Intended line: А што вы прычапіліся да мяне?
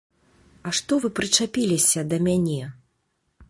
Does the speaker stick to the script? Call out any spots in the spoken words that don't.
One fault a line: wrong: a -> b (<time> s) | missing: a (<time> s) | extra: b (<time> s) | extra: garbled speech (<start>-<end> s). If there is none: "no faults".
no faults